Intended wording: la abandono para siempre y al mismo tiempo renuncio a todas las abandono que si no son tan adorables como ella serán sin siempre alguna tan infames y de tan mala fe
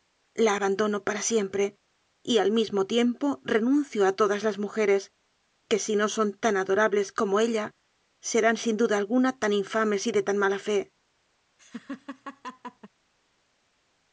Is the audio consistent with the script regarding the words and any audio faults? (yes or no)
no